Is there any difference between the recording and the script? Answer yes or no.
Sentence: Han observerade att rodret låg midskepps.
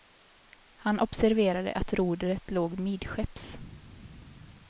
no